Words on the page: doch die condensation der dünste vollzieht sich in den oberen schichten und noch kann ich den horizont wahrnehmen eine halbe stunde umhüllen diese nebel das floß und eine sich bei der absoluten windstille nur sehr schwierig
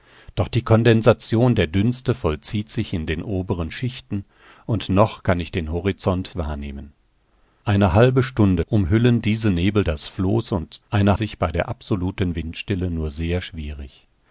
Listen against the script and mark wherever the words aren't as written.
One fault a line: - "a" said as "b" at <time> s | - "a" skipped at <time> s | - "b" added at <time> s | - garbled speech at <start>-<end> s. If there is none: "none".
none